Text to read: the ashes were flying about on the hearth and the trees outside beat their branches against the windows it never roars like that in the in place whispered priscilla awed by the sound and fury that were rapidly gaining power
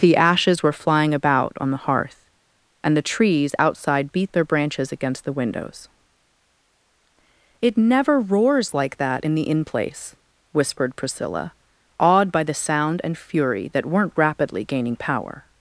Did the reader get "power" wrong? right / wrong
right